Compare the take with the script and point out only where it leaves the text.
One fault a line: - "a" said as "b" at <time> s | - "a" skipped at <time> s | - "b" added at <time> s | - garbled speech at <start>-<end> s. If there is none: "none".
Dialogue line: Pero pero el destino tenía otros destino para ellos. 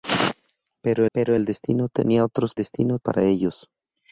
none